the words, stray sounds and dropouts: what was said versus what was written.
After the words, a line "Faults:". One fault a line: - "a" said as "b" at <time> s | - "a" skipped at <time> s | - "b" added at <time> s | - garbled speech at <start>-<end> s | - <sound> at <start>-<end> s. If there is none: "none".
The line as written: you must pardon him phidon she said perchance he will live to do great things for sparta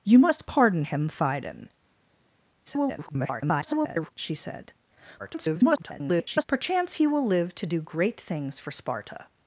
you must pardon him phidon [garbled] she said [garbled] perchance he will live to do great things for sparta
Faults:
- garbled speech at 2.7-4.1 s
- garbled speech at 5.2-6.4 s